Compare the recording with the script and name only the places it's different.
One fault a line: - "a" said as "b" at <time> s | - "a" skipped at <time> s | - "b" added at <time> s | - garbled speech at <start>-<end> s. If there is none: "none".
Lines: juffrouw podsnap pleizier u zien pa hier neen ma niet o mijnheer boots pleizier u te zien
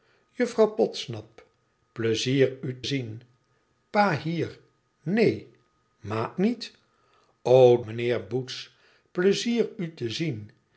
none